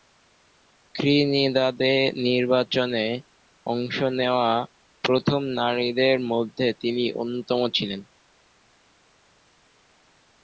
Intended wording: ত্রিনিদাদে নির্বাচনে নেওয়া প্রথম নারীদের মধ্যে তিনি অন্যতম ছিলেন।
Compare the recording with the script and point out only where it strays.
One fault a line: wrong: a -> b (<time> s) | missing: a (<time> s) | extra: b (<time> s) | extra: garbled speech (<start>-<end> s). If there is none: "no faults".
extra: অংশ (3.6 s)